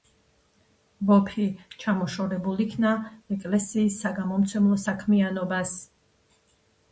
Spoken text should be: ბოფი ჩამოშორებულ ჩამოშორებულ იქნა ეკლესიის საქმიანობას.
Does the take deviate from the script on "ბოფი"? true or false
false